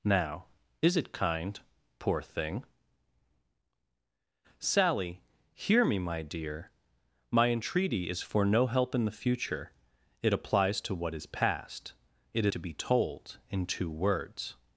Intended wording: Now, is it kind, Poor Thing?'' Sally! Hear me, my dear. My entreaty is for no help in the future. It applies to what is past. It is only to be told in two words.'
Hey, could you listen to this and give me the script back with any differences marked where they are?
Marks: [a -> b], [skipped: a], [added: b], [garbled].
Now, is it kind, Poor Thing?'' Sally! Hear me, my dear. My entreaty is for no help in the future. It applies to what is past. It [skipped: is only] to be told in two words.'